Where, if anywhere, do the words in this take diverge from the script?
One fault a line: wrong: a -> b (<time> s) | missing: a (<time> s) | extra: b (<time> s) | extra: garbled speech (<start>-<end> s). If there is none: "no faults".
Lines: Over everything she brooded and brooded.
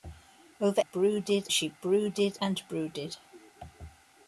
wrong: everything -> brooded (0.8 s)